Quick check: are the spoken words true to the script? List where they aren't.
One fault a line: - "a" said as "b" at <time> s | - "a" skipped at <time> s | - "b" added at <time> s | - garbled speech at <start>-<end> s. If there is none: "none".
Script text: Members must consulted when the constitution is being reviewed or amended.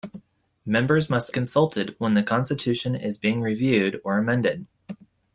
none